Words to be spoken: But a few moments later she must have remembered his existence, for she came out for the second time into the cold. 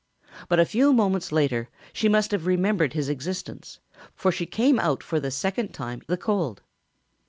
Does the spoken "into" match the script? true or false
false